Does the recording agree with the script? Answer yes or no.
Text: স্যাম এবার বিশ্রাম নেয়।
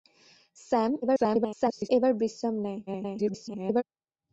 no